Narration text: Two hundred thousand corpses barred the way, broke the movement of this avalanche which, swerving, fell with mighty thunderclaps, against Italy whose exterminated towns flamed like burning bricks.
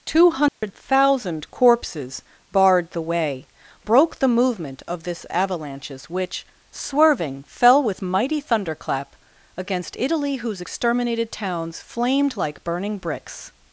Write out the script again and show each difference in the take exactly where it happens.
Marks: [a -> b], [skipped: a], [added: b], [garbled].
Two hundred thousand corpses barred the way, broke the movement of this [avalanche -> avalanches] which, swerving, fell with mighty [thunderclaps, -> thunderclap] against Italy whose exterminated towns flamed like burning bricks.